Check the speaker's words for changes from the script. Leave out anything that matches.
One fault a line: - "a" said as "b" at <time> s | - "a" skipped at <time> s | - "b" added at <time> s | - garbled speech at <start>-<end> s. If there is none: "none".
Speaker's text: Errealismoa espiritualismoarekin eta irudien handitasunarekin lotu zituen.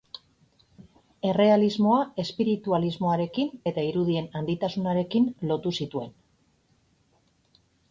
none